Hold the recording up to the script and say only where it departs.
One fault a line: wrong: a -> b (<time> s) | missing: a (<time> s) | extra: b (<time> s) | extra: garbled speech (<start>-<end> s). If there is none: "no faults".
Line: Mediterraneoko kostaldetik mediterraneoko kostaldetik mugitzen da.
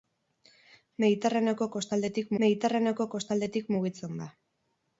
no faults